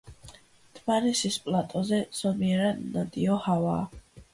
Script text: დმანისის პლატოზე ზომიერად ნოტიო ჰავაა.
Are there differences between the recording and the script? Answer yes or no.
no